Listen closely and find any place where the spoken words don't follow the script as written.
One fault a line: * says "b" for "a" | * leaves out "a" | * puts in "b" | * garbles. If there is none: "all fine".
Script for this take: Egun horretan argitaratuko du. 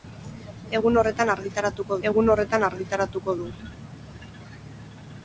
* puts in "egun horretan argitaratuko"